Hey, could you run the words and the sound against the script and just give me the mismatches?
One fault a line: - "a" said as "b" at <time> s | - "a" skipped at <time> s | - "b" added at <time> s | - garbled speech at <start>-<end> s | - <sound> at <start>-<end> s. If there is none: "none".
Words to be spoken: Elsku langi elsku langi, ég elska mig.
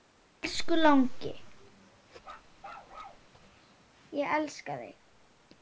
- "elsku langi" skipped at 1.3 s
- bark at 2.2-3.3 s
- "mig" said as "þig" at 4.8 s